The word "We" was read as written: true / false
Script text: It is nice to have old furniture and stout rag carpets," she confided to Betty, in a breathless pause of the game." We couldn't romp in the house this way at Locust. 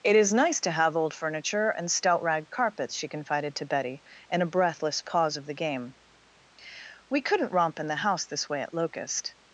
true